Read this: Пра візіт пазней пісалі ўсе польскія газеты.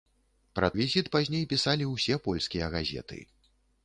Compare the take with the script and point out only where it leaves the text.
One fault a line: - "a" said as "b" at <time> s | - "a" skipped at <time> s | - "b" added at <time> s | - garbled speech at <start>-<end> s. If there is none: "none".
none